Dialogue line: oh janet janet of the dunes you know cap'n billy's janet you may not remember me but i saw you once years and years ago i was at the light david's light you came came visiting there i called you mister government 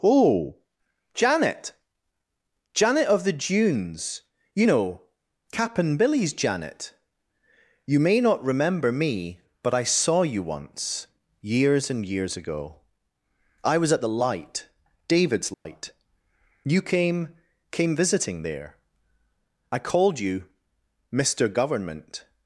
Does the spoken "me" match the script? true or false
true